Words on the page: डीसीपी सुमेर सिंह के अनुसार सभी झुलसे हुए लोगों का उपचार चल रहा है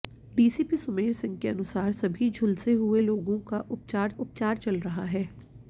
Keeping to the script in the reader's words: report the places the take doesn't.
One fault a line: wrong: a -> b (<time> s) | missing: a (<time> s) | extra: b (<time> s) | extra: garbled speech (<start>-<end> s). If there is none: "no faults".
extra: उपचार (4.2 s)